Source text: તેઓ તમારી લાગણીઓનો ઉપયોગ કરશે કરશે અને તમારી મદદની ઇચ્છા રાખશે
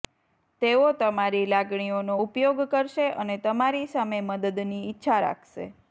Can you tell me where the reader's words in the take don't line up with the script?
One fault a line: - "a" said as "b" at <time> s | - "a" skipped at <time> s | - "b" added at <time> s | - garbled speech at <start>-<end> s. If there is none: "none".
- "કરશે" skipped at 3.1 s
- "સામે" added at 3.9 s